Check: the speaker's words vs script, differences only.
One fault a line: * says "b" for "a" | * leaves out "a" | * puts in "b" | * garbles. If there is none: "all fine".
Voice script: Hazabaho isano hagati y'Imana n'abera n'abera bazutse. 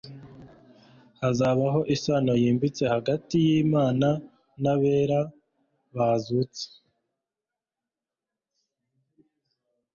* puts in "yimbitse"
* leaves out "n'abera"